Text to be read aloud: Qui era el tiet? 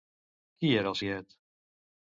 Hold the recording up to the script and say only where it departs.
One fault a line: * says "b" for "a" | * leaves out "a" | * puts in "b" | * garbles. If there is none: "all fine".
all fine